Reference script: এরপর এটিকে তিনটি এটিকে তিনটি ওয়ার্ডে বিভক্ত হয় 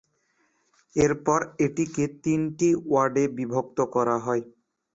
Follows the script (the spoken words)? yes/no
no